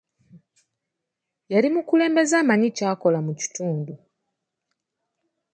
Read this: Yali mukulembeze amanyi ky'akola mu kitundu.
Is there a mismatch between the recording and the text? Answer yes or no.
no